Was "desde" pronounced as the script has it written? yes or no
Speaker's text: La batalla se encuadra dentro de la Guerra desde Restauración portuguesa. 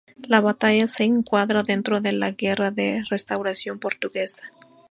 no